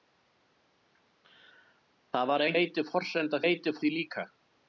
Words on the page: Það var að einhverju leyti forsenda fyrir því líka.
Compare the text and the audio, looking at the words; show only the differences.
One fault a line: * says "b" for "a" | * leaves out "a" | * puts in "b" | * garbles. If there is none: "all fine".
* leaves out "einhverju"
* says "leyti" for "fyrir"